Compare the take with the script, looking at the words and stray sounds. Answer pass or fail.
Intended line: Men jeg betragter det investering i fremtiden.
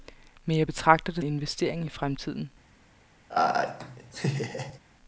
fail